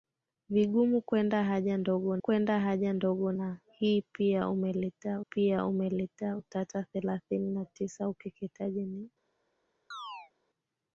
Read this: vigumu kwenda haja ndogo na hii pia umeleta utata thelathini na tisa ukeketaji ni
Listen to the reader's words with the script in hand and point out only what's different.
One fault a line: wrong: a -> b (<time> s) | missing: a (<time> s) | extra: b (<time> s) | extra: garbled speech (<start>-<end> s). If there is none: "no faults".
extra: kwenda haja ndogo (2.2 s)
extra: pia umeleta (5.2 s)